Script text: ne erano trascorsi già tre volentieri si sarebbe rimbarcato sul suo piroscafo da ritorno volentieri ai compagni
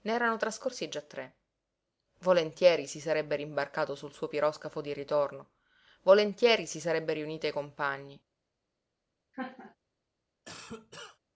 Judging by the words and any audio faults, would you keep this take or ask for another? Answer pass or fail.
fail